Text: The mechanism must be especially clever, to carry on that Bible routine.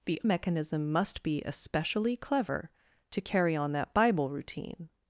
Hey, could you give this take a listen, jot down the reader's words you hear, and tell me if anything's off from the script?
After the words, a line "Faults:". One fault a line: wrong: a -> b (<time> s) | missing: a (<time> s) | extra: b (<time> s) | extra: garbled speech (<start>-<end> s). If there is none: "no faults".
The mechanism must be especially clever, to carry on that Bible routine.
Faults:
no faults